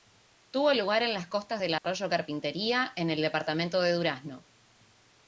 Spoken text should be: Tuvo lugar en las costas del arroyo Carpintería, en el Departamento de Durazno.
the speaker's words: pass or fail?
pass